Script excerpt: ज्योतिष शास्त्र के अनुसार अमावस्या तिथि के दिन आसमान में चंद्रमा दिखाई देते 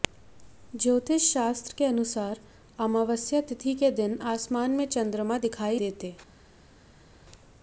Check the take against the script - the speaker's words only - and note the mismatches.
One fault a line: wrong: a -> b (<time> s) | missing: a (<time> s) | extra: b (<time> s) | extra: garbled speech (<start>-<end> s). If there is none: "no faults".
no faults